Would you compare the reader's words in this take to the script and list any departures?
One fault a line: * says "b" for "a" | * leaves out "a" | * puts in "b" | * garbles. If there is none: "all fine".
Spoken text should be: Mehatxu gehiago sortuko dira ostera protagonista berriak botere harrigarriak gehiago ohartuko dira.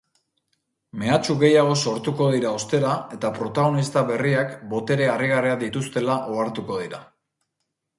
* puts in "eta"
* says "dituztela" for "gehiago"